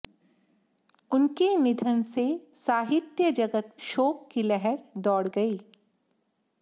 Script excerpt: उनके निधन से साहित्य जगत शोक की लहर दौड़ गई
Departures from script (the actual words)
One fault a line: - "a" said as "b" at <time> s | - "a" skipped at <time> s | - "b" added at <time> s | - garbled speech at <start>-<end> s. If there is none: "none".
none